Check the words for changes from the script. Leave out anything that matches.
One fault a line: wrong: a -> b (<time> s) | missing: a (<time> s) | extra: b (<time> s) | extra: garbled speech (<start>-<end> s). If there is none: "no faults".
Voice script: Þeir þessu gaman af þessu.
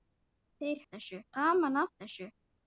no faults